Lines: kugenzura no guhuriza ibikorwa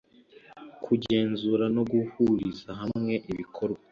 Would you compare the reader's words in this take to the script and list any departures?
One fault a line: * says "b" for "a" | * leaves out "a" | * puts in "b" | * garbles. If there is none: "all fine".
* puts in "hamwe"